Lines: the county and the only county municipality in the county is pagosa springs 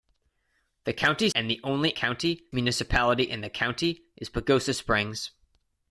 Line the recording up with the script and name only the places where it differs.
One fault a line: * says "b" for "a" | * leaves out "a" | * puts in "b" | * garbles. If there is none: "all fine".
all fine